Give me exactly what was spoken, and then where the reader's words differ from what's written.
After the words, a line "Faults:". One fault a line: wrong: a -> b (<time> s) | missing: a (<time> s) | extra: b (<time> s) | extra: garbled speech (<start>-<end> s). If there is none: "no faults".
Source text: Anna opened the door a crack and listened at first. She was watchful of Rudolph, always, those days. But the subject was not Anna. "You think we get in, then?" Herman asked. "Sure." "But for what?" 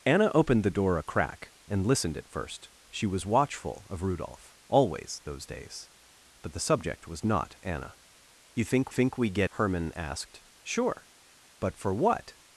Anna opened the door a crack and listened at first. She was watchful of Rudolph, always, those days. But the subject was not Anna. "You think think we get?" Herman asked. "Sure." "But for what?"
Faults:
extra: think (8.9 s)
missing: in then (9.5 s)